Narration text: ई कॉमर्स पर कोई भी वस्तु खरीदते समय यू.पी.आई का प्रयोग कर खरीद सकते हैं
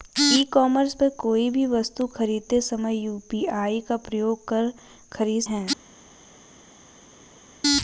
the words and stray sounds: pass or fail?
fail